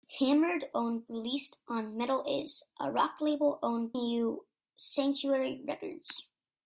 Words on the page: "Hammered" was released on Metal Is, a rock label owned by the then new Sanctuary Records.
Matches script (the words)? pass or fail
fail